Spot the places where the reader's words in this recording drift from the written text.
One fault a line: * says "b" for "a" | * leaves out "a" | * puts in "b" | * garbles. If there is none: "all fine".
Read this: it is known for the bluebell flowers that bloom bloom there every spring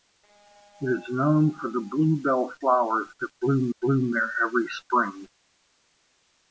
all fine